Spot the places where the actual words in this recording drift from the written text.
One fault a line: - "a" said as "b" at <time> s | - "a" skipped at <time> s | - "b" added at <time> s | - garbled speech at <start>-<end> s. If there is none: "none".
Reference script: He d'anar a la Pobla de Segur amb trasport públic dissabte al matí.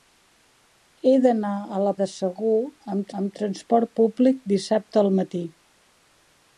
- "Pobla" skipped at 1.9 s
- "amb" added at 3.2 s